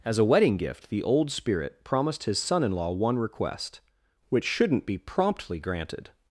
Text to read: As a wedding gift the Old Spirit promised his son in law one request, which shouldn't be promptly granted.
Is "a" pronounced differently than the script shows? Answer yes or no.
no